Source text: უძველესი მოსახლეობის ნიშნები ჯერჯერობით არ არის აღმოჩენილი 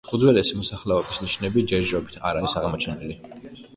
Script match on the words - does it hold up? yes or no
yes